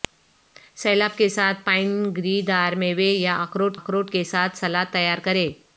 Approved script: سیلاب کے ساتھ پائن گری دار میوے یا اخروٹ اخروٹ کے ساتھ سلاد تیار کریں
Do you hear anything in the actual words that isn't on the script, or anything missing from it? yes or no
no